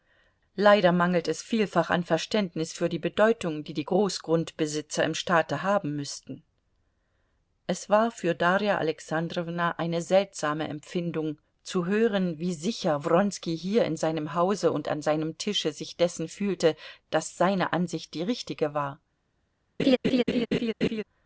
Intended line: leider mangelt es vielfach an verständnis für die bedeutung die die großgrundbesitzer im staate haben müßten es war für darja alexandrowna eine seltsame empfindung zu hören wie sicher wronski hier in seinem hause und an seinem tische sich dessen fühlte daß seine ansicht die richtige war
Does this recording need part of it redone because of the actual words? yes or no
no